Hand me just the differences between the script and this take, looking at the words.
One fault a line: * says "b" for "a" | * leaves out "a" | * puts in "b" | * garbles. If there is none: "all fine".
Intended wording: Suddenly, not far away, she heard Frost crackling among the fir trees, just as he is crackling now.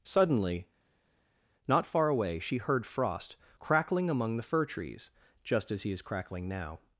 all fine